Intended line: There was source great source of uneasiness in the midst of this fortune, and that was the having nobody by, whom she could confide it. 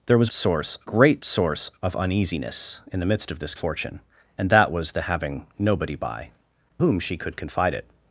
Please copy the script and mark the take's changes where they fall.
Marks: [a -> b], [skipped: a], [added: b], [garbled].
There was source great source of uneasiness in the midst of this fortune, and that was the having nobody by, whom she could confide it.